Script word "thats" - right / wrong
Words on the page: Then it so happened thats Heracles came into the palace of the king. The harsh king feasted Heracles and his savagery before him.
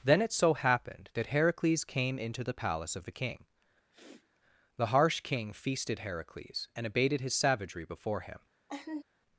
wrong